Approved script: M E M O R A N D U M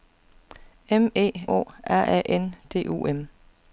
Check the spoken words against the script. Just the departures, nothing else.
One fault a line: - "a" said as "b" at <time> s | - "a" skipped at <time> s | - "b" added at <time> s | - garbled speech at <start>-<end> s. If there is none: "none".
- "M" skipped at 1.3 s